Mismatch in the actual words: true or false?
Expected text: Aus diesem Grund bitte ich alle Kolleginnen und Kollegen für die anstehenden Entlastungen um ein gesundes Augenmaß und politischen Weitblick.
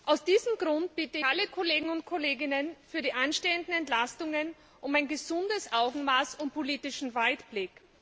true